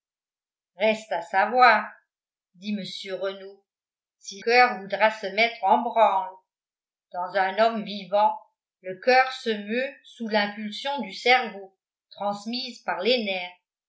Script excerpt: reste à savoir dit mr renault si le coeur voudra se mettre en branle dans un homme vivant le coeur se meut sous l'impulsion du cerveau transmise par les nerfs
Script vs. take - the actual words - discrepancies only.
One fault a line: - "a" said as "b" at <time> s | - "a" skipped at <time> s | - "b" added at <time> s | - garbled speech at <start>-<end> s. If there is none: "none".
- "le" skipped at 4.4 s